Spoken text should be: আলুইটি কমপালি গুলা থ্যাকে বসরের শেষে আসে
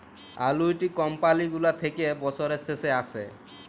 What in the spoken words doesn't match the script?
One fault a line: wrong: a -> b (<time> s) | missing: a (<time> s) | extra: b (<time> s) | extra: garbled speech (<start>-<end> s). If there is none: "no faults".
no faults